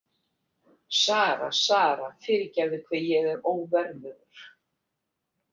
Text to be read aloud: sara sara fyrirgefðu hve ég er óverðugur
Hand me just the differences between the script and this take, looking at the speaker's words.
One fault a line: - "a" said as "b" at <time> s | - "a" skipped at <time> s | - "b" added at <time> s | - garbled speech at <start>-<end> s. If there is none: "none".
none